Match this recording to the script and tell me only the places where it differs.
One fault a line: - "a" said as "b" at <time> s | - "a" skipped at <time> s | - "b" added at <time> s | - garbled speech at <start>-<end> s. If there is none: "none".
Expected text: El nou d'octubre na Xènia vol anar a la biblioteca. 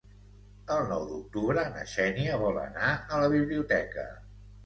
none